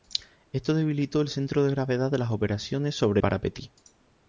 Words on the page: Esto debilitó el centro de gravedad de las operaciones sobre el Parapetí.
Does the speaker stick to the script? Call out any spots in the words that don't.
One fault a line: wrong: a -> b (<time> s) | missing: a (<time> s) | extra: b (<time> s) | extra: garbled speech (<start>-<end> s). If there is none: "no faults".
missing: el (3.2 s)